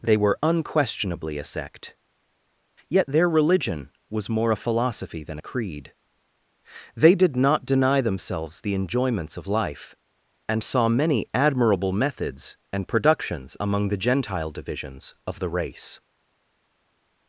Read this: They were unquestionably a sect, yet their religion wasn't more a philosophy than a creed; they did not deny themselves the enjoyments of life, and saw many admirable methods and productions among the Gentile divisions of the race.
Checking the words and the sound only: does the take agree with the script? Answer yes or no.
no